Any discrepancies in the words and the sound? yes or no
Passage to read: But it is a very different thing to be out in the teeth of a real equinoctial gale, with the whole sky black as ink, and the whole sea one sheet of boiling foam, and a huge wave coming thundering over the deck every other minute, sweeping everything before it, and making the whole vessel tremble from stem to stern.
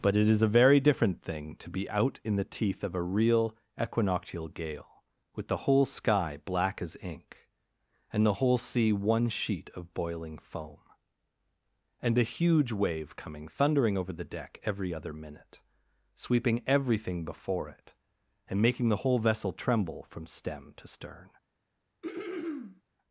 yes